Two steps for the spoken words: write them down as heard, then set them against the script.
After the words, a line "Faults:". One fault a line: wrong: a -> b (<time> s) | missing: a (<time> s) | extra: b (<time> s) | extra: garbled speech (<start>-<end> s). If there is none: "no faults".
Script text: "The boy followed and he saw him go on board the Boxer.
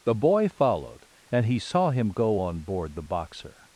"The boy followed and he saw him go on board the Boxer.
Faults:
no faults